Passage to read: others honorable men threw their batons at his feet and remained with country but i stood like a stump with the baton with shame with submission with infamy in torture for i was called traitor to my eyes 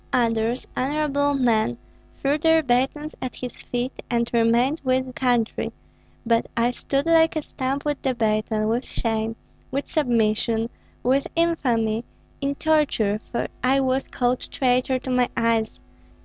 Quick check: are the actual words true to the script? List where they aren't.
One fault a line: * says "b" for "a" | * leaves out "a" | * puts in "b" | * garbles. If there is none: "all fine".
all fine